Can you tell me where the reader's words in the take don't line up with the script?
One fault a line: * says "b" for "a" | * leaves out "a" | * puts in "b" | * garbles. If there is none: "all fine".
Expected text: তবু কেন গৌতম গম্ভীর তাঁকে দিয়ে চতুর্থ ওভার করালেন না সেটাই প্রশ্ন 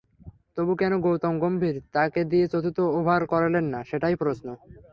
all fine